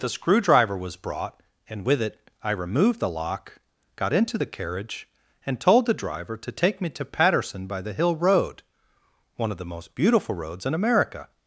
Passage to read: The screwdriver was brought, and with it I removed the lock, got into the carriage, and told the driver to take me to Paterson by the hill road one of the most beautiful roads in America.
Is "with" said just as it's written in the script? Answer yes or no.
yes